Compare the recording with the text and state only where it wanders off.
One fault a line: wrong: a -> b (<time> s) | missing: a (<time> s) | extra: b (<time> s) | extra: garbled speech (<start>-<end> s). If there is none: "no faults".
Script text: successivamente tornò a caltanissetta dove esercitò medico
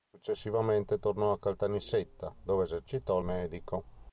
no faults